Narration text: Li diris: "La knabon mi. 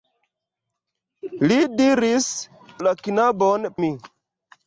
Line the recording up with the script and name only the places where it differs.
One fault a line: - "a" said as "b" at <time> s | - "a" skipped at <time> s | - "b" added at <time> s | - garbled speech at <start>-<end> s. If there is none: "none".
none